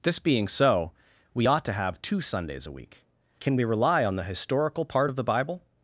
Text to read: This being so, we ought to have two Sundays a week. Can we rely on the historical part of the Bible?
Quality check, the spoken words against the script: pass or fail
pass